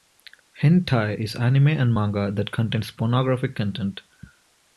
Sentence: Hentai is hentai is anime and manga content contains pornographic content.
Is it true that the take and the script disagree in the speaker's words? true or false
true